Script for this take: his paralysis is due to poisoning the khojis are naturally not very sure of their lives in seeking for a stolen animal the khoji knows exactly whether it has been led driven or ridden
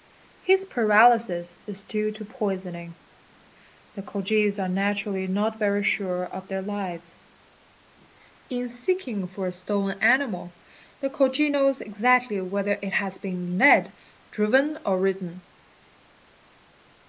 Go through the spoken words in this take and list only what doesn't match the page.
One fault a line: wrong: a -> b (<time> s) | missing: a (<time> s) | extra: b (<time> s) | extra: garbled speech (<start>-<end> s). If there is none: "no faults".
no faults